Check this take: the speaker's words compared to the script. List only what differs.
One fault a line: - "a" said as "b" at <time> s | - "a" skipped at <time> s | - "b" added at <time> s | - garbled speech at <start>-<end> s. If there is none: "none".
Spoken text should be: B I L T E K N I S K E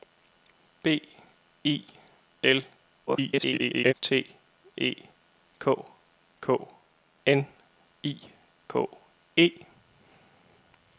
- garbled speech at 3.1-3.9 s
- "K" added at 6.4 s
- "S" skipped at 8.2 s